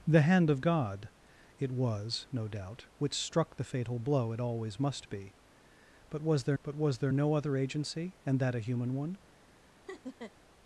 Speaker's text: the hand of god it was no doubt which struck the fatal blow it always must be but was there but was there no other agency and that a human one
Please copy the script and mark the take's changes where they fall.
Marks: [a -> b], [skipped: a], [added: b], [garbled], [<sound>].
the hand of god it was no doubt which struck the fatal blow it always must be but was there but was there no other agency and that a human one [laugh]